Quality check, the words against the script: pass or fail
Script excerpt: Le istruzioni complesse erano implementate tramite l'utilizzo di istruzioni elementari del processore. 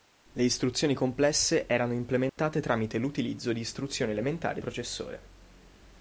fail